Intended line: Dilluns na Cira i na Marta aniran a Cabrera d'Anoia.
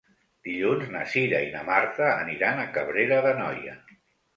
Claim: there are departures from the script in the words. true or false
false